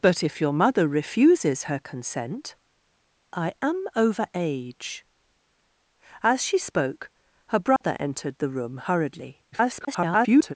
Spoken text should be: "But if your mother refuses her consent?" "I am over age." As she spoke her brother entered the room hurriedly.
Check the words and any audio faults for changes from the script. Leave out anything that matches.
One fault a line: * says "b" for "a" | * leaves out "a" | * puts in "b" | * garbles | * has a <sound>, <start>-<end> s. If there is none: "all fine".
* has a dropout, 7.8-7.8 s
* garbles